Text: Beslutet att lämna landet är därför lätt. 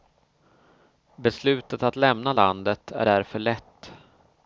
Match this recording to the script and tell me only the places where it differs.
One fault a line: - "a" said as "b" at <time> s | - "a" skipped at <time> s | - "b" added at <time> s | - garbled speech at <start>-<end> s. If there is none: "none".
none